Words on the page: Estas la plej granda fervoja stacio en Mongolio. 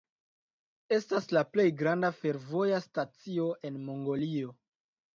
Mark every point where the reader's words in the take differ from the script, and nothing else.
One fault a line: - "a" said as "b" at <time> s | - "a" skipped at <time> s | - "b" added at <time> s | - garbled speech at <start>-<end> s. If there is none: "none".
none